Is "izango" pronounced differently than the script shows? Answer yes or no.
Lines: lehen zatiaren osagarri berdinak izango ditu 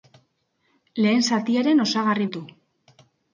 yes